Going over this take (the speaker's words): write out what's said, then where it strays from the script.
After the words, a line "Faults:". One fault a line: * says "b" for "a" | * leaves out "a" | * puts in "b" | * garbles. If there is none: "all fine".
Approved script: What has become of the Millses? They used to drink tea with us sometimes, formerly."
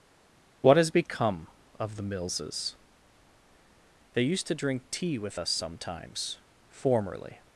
What has become of the Millses? They used to drink tea with us sometimes, formerly."
Faults:
all fine